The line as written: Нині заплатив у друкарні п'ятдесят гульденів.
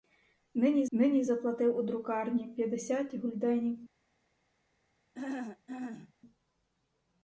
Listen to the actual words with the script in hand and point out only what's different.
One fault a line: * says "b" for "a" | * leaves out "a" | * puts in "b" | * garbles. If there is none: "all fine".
* puts in "нині"